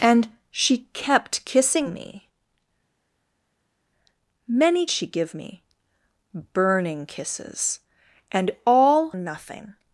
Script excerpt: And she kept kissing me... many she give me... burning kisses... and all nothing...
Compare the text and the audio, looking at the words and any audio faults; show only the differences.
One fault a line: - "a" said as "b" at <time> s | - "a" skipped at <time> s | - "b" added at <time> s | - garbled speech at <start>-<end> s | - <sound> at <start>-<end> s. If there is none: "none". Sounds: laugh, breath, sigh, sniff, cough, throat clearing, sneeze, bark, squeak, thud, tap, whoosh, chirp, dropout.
none